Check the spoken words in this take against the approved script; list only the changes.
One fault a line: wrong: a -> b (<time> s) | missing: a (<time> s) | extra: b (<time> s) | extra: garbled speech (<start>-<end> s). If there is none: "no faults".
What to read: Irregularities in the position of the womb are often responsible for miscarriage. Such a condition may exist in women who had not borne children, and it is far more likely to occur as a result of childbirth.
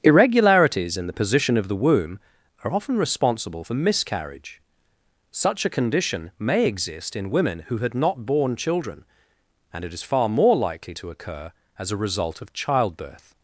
no faults